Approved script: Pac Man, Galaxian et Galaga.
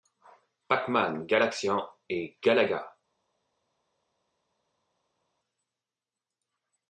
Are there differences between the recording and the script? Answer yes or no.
no